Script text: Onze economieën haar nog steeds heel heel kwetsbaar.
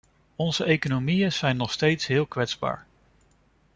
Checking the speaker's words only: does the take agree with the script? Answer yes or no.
no